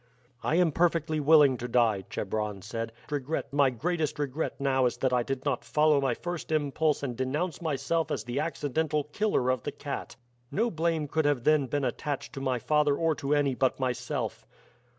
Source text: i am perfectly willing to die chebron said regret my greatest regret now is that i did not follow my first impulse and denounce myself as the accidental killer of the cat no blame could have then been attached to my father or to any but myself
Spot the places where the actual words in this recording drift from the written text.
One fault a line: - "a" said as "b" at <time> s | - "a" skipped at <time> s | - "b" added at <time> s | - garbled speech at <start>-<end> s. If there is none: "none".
none